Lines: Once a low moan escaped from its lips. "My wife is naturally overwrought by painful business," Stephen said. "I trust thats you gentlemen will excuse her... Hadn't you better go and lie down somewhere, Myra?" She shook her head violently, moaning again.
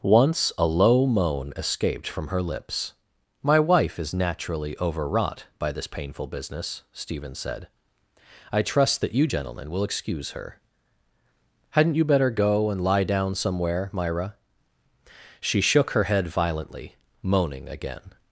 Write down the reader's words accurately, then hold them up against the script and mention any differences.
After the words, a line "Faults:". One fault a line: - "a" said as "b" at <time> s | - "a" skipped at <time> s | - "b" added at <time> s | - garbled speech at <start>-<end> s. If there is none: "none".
Once a low moan escaped from her lips. "My wife is naturally overwrought by this painful business," Stephen said. "I trust that you gentlemen will excuse her... Hadn't you better go and lie down somewhere, Myra?" She shook her head violently, moaning again.
Faults:
- "its" said as "her" at 2.3 s
- "this" added at 5.7 s
- "thats" said as "that" at 9.0 s